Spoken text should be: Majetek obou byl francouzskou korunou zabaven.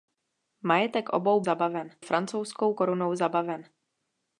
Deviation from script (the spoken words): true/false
true